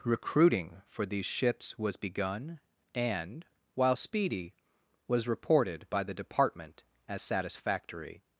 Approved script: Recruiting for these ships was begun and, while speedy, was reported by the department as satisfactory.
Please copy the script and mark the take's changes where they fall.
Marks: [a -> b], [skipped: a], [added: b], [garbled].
Recruiting for these ships was begun and, while speedy, was reported by the department as satisfactory.